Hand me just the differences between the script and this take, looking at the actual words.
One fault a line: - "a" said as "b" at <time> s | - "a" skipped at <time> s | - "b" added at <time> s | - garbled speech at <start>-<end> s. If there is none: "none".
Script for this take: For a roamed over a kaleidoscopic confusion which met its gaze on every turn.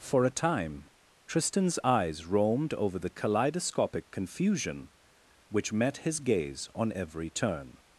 - "time Tristan's eyes" added at 0.3 s
- "a" said as "the" at 3.0 s
- "its" said as "his" at 6.0 s